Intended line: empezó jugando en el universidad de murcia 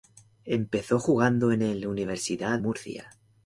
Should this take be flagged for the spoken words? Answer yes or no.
yes